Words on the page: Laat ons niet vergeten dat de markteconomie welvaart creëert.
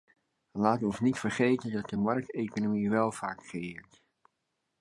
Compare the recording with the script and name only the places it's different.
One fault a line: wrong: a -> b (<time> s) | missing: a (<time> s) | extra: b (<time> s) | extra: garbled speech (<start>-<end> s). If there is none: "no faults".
no faults